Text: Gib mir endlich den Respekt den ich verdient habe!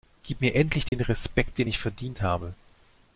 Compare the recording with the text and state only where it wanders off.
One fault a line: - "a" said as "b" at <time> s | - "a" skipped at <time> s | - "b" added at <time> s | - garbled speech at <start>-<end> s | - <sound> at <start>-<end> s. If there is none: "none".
- dropout at 0.9-0.9 s